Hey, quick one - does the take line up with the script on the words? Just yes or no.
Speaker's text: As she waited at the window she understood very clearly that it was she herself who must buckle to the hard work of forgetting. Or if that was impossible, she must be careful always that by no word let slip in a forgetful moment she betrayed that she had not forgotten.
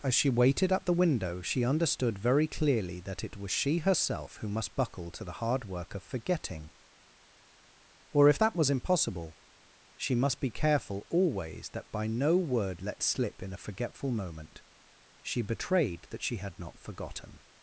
yes